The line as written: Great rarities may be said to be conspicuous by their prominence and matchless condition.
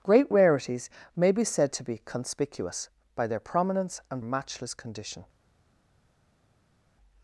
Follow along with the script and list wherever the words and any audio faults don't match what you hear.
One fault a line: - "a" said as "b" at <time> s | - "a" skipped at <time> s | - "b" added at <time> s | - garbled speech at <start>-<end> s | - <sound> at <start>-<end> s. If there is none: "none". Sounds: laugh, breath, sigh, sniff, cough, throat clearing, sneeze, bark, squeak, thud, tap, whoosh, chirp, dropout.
none